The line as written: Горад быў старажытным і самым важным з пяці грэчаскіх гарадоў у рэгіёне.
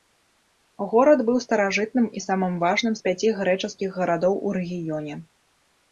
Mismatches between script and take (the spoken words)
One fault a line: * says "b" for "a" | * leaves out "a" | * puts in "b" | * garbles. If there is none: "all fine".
all fine